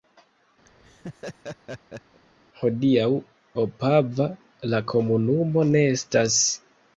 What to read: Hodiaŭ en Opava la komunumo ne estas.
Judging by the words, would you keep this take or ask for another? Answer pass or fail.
fail